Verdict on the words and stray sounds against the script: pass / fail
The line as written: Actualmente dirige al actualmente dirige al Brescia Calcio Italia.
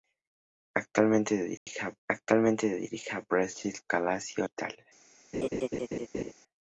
fail